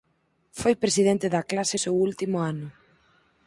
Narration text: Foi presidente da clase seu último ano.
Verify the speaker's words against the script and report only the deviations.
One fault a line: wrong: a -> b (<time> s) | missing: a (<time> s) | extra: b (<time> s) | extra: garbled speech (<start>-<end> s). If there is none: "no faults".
no faults